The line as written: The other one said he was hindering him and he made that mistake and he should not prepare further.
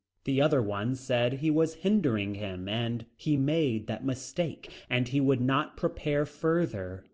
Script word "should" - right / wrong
wrong